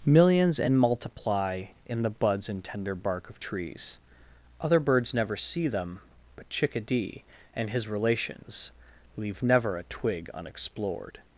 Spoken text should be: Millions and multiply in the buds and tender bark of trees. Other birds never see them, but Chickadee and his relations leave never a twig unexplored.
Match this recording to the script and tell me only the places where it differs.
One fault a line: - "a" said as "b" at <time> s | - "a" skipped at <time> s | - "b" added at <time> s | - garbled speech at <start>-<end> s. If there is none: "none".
none